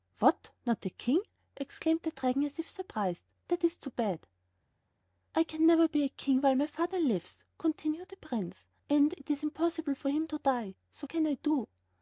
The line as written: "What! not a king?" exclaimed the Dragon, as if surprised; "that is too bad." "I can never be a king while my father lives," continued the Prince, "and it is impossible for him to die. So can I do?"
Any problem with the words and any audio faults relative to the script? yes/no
no